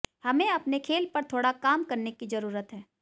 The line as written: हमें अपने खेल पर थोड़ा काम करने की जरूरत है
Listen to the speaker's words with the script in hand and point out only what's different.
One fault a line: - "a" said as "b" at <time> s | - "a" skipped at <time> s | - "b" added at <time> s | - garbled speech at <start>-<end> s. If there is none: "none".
none